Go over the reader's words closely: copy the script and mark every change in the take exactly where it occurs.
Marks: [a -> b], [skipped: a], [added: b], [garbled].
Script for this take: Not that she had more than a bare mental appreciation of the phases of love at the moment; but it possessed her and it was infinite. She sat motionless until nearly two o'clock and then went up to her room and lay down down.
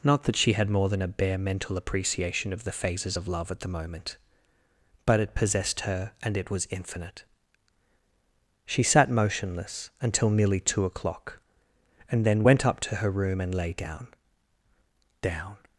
Not that she had more than a bare mental appreciation of the phases of love at the moment; but it possessed her and it was infinite. She sat motionless until nearly two o'clock and then went up to her room and lay down down.